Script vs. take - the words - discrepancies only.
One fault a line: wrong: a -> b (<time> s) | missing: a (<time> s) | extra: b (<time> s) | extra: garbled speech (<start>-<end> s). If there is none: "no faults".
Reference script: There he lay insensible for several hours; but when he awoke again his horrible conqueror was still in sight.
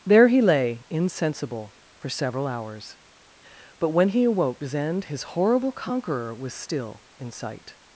wrong: again -> zend (4.6 s)